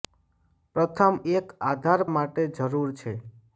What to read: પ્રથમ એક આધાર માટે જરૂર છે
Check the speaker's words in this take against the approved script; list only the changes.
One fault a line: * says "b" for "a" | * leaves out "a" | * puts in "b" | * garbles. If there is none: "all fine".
all fine